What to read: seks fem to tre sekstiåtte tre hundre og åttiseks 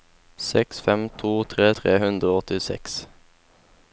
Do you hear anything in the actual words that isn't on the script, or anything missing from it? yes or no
yes